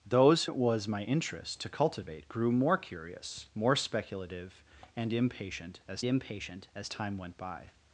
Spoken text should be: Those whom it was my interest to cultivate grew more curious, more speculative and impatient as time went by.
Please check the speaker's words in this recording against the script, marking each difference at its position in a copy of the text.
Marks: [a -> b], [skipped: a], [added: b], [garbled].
Those [skipped: whom] it was my interest to cultivate grew more curious, more speculative and impatient as [added: impatient as] time went by.